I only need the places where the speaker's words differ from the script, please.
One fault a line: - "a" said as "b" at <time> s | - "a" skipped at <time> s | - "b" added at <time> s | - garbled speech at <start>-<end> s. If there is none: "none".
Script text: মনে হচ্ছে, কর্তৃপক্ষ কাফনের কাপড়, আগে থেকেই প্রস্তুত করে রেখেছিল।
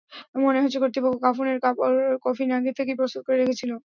- "কফিন" added at 2.2 s